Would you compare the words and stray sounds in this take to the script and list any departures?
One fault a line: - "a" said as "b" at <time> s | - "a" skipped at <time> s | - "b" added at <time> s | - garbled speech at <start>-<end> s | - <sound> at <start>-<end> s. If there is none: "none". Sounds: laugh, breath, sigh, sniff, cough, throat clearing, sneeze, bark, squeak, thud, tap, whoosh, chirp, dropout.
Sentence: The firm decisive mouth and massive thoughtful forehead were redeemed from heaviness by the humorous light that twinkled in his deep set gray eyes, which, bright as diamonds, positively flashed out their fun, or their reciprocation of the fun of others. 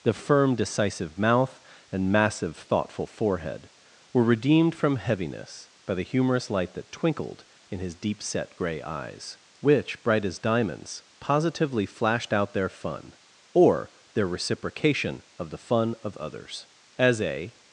- "As a" added at 17.0 s